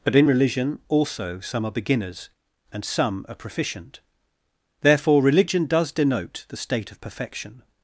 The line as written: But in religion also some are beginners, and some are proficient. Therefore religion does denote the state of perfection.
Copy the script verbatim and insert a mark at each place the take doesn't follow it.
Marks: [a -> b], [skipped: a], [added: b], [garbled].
But in religion also some are beginners, and some are proficient. Therefore religion does denote the state of perfection.